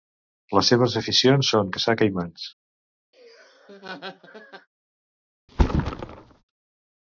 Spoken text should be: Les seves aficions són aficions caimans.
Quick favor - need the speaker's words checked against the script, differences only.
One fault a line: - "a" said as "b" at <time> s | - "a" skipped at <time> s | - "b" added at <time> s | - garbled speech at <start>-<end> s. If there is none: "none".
- "aficions" said as "caçar" at 1.8 s